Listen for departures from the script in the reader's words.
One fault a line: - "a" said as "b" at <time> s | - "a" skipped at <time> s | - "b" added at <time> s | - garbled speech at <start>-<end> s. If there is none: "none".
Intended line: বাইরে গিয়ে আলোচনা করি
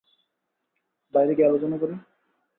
none